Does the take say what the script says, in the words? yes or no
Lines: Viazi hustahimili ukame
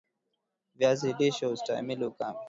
no